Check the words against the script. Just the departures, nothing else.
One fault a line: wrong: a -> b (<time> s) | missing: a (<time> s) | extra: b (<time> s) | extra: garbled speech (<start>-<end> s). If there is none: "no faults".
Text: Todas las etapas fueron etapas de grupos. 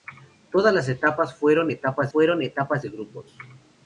extra: fueron etapas (2.1 s)